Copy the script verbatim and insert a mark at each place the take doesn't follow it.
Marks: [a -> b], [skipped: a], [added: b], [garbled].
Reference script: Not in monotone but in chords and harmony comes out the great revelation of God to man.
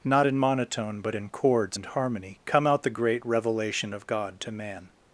Not in monotone but in chords and harmony [comes -> come] out the great revelation of God to man.